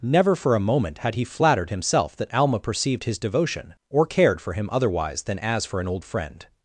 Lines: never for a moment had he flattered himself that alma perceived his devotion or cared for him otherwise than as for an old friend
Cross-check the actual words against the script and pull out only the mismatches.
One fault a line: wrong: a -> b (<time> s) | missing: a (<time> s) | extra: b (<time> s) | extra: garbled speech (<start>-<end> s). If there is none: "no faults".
no faults